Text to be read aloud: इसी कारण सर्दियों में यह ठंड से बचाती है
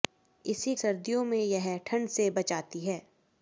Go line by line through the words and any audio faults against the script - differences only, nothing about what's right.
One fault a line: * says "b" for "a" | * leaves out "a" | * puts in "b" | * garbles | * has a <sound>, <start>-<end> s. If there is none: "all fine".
* leaves out "कारण"